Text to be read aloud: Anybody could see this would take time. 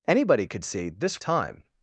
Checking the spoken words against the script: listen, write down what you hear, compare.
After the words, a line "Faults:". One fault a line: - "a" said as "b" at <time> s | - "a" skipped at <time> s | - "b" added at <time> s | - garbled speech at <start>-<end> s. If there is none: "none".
Anybody could see this time.
Faults:
- "would take" skipped at 1.2 s